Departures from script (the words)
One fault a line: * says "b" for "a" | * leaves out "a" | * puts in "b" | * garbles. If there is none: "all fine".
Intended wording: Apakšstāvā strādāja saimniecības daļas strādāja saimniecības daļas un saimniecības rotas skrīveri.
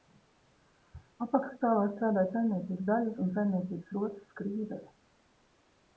* leaves out "strādāja saimniecības daļas"